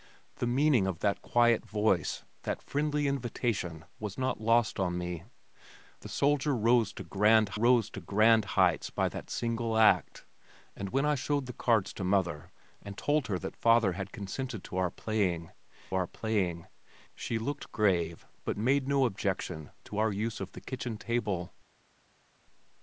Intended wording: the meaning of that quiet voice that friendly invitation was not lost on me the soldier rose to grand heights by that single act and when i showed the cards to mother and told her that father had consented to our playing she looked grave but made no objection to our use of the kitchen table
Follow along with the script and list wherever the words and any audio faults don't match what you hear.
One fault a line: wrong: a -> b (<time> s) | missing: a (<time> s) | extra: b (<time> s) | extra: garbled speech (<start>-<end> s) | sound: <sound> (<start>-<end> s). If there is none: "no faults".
extra: rose to grand (7.5 s)
extra: our playing (15.9 s)